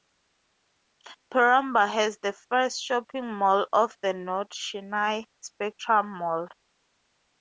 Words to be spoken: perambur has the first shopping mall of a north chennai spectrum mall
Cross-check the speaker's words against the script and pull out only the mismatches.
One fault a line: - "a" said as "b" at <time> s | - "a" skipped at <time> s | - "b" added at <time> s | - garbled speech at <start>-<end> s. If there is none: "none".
- "a" said as "the" at 4.0 s